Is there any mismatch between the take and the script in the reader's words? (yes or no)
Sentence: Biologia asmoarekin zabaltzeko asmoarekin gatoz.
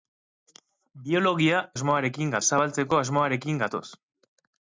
no